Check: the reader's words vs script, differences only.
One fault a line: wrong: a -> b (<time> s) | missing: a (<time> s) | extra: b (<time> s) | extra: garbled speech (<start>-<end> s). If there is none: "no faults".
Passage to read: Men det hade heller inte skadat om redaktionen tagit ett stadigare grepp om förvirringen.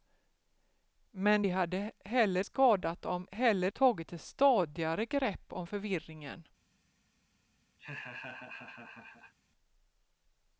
missing: inte (2.5 s)
wrong: redaktionen -> heller (3.3 s)